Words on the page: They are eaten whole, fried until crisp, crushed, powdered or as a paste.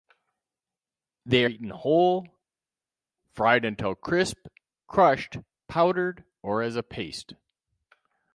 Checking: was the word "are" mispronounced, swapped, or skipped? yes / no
yes